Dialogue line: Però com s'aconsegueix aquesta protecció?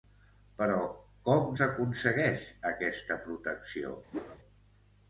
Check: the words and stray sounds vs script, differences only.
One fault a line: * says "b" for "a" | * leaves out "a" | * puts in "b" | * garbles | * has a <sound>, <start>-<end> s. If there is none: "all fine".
* has a whoosh, 4.1-4.4 s